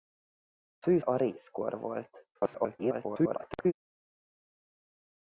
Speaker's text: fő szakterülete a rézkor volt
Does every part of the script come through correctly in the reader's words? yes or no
no